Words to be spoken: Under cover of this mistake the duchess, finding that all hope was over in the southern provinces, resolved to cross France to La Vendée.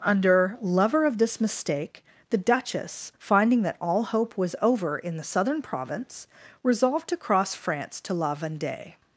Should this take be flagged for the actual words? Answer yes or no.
yes